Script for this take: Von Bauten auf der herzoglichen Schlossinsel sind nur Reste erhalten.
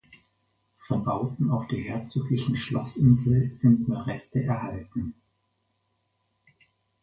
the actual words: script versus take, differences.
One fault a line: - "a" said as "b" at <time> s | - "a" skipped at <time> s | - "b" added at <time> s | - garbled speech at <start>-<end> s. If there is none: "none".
none